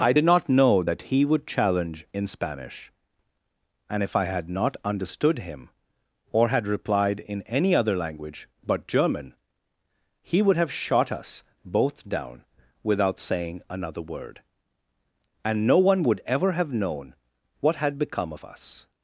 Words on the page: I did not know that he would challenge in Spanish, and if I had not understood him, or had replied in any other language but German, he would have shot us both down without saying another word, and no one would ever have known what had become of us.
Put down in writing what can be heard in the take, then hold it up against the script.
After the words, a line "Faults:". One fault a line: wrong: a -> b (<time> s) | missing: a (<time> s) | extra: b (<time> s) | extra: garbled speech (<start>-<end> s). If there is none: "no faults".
I did not know that he would challenge in Spanish, and if I had not understood him, or had replied in any other language but German, he would have shot us both down without saying another word, and no one would ever have known what had become of us.
Faults:
no faults